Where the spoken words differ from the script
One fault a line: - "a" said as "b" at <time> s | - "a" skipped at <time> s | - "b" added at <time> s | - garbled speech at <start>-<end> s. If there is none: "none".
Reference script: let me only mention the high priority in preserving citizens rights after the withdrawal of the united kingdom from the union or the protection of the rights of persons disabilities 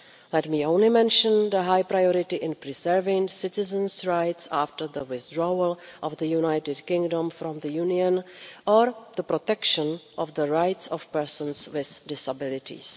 - "with" added at 11.7 s